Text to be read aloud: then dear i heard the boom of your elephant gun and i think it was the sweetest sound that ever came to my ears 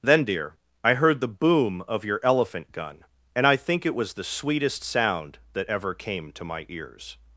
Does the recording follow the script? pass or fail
pass